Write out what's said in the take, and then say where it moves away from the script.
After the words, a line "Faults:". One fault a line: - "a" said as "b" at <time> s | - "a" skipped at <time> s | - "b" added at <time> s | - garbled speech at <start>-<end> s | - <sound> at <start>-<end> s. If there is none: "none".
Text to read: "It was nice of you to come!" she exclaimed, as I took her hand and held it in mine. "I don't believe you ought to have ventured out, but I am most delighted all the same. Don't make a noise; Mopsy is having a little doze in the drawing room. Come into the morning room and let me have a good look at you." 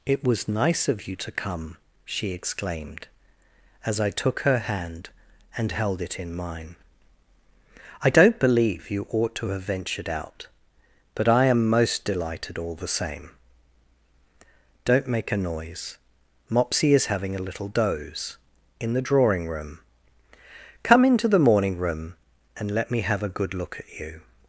"It was nice of you to come!" she exclaimed, as I took her hand and held it in mine. "I don't believe you ought to have ventured out, but I am most delighted all the same. Don't make a noise; Mopsy is having a little doze in the drawing room. Come into the morning room and let me have a good look at you."
Faults:
none